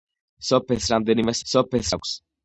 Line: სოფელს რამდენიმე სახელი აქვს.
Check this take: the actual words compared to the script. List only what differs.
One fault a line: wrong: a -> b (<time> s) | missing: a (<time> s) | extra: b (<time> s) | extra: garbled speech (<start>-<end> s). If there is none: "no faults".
wrong: სახელი -> სოფელს (1.5 s)